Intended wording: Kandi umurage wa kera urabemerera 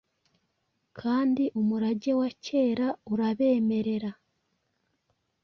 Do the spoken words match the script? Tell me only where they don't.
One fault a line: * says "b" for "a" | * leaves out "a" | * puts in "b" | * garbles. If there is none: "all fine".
all fine